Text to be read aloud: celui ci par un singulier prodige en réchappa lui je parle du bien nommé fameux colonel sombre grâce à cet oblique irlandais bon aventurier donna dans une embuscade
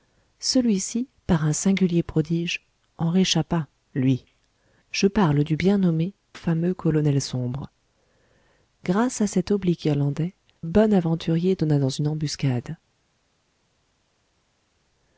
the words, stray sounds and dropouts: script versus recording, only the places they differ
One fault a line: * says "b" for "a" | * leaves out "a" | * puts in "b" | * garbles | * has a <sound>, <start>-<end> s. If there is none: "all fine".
all fine